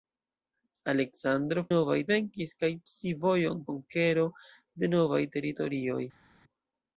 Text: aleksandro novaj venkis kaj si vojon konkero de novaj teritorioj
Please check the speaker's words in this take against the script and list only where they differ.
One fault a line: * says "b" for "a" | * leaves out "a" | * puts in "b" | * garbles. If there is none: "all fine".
all fine